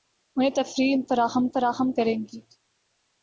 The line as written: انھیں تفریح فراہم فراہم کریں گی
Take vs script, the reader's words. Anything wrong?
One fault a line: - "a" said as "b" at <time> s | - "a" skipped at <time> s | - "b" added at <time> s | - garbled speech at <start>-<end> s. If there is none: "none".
none